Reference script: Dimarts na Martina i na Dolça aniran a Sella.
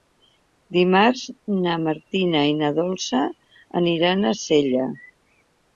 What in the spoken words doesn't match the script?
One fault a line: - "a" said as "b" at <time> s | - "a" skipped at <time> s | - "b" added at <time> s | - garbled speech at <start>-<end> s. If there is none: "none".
none